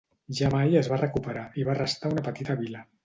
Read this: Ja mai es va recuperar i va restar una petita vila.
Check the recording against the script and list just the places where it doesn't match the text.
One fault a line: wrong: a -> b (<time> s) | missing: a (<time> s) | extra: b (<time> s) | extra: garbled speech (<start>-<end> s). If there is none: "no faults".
no faults